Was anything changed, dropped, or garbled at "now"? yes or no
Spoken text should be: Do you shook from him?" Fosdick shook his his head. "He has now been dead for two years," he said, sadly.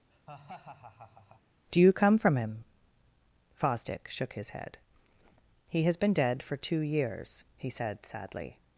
yes